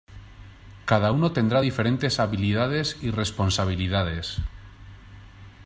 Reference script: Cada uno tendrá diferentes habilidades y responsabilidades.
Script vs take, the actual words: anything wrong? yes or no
no